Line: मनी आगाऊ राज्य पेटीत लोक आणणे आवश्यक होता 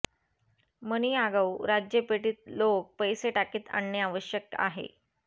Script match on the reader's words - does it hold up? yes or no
no